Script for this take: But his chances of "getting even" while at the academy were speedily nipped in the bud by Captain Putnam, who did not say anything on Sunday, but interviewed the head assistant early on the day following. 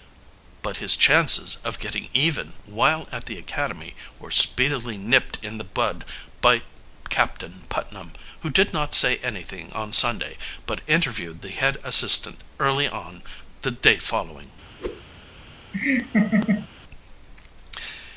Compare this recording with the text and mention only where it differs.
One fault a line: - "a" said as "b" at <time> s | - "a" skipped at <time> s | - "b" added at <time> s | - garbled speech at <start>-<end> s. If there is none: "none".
none